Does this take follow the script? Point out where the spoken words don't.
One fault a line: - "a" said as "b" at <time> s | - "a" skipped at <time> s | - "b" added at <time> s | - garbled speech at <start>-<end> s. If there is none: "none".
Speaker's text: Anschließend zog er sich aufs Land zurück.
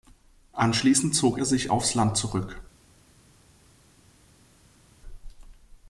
none